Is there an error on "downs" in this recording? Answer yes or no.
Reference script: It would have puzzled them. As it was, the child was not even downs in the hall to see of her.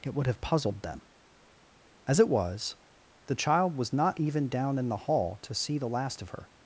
yes